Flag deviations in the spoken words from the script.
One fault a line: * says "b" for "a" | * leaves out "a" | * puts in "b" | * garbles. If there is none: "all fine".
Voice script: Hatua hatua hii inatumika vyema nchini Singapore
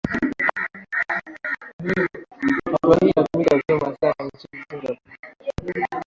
* leaves out "hatua"
* puts in "sana"